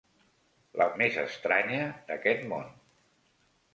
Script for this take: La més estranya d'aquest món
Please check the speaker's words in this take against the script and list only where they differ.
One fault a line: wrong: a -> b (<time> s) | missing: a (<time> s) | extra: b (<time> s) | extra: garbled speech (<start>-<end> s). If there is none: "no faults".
no faults